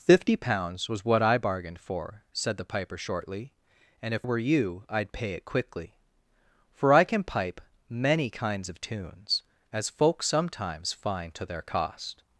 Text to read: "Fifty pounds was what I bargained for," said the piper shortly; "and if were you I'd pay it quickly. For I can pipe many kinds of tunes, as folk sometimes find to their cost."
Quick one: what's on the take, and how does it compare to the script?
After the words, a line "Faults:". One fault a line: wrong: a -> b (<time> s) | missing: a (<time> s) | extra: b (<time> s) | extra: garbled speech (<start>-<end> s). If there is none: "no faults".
"Fifty pounds was what I bargained for," said the piper shortly; "and if were you I'd pay it quickly. For I can pipe many kinds of tunes, as folk sometimes find to their cost."
Faults:
no faults